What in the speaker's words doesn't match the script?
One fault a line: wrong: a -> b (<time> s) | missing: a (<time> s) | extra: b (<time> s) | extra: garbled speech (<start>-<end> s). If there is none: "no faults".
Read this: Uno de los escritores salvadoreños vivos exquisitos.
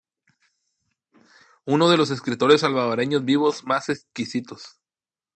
extra: más (3.6 s)